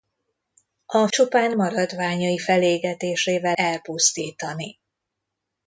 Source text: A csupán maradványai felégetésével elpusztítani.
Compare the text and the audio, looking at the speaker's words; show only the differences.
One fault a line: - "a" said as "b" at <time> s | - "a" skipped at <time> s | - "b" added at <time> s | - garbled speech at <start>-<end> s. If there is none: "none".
none